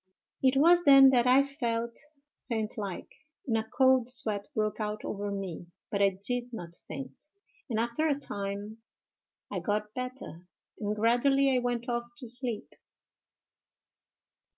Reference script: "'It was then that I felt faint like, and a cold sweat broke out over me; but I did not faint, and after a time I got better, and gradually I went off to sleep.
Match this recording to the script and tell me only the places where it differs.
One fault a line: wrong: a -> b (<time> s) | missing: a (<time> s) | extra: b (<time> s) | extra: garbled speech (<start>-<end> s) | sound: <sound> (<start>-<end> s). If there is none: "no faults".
no faults